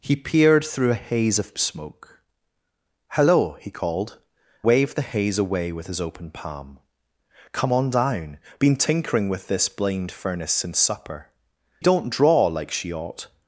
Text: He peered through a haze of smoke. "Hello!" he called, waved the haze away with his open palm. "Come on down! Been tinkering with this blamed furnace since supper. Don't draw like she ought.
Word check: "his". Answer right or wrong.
right